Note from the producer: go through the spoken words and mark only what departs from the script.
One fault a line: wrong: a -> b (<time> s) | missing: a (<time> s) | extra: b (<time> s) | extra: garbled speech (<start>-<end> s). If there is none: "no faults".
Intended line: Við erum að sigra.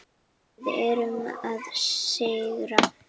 no faults